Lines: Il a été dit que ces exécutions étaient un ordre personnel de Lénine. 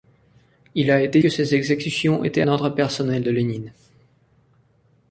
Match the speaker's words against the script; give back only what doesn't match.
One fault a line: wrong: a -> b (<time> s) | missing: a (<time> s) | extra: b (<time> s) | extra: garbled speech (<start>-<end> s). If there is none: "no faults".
missing: dit (1.2 s)
missing: un (2.4 s)